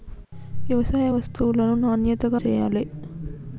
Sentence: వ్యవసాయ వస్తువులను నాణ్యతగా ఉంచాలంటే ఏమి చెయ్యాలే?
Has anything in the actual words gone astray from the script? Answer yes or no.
yes